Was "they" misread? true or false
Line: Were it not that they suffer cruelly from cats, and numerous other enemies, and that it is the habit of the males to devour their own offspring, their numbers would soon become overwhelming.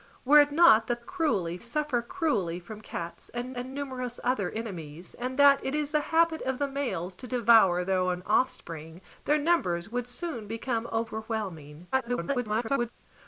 true